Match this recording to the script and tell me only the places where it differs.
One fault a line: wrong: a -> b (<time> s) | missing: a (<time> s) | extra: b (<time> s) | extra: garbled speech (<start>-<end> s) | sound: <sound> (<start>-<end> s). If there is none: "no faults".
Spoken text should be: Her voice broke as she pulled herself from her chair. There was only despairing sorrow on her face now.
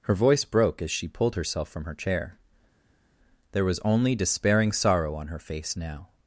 no faults